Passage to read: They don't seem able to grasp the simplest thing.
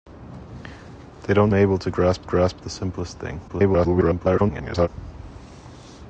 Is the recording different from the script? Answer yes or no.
yes